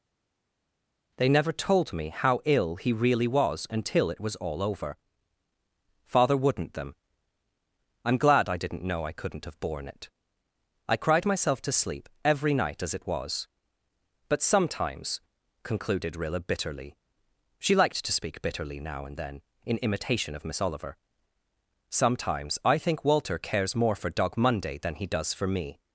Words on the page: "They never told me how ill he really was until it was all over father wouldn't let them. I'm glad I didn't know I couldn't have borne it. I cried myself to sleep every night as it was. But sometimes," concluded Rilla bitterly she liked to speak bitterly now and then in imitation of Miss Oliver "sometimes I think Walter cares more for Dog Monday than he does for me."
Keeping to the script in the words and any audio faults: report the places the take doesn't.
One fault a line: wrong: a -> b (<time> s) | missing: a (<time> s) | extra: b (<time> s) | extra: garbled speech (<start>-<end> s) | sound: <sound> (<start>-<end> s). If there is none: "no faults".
missing: let (6.7 s)